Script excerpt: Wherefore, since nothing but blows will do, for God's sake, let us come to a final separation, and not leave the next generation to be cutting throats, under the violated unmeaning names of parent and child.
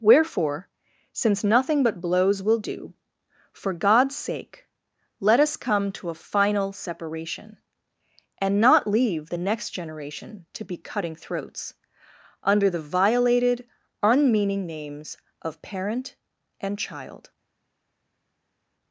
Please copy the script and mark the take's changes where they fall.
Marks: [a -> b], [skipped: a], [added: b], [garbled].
Wherefore, since nothing but blows will do, for God's sake, let us come to a final separation, and not leave the next generation to be cutting throats, under the violated unmeaning names of parent and child.